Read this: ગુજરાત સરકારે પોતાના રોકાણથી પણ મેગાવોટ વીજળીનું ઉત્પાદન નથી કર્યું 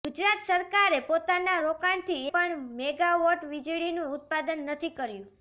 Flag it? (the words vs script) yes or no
no